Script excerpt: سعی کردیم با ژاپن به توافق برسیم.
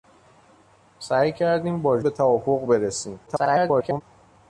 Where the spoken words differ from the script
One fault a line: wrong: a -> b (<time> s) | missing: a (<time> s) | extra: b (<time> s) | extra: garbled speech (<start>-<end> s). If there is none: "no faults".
missing: ژاپن (2.0 s)
extra: garbled speech (3.3-4.0 s)